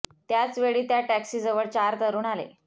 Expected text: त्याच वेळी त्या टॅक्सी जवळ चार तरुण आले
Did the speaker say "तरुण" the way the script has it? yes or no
yes